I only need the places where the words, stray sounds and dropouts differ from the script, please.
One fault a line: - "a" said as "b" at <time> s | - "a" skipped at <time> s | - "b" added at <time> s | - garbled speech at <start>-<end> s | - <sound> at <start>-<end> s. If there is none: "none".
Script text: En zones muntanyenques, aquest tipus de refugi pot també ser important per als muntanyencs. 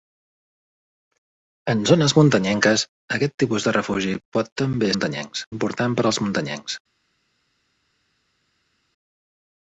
- "ser" said as "muntanyencs" at 4.9 s